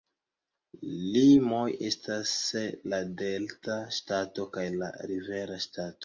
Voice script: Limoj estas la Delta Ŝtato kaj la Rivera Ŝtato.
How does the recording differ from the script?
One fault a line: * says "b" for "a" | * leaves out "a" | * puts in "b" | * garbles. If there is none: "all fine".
all fine